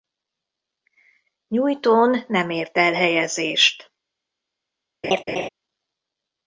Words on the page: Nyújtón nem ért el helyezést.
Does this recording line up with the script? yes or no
yes